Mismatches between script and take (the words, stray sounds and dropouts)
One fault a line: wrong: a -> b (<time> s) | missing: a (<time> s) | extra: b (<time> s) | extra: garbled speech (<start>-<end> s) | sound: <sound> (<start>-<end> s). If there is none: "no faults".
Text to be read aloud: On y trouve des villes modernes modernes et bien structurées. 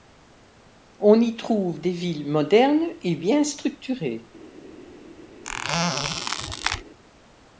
missing: modernes (2.9 s)
sound: squeak (5.4-6.8 s)